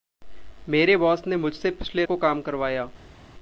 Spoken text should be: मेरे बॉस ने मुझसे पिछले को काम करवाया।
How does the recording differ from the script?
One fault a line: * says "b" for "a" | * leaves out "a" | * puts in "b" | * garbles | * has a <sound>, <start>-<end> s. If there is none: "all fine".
all fine